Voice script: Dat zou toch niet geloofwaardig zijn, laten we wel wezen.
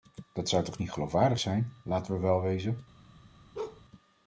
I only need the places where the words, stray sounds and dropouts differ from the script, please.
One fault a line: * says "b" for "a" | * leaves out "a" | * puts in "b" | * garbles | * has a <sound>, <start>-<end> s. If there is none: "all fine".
* has a bark, 3.5-3.8 s